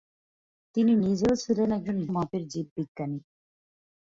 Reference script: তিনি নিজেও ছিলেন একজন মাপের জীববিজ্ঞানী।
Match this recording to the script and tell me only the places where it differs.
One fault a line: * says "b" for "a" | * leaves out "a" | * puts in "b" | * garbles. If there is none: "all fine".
all fine